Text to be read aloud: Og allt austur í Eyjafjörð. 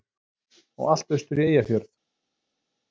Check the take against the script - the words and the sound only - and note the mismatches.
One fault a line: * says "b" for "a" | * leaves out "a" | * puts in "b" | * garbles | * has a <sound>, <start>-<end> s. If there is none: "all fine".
all fine